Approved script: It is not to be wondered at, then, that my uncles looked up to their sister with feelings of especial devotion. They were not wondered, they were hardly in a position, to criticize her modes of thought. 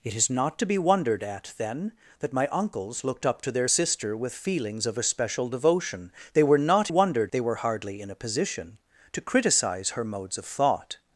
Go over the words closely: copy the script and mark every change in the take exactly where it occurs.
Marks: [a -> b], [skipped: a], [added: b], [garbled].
It is not to be wondered at, then, that my uncles looked up to their sister with feelings of especial devotion. They were not wondered, they were hardly in a position, to criticize her modes of thought.